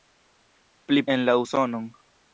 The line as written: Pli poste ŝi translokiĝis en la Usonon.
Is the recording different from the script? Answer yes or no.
yes